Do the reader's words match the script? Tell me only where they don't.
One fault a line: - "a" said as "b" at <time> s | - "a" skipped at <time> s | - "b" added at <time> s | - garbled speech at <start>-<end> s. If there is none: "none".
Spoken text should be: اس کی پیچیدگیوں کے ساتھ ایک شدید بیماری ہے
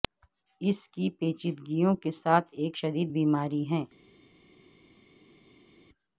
none